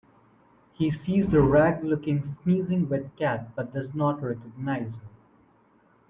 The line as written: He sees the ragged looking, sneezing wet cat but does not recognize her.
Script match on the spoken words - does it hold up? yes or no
yes